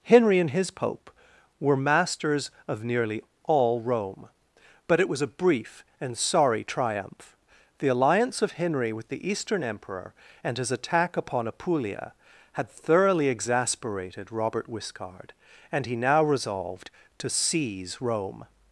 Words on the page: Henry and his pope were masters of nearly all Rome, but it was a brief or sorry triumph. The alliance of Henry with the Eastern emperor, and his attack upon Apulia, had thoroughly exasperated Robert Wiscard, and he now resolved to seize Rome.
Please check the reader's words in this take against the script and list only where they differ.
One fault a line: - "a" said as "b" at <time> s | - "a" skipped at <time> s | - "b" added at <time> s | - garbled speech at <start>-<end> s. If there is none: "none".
- "or" said as "and" at 6.0 s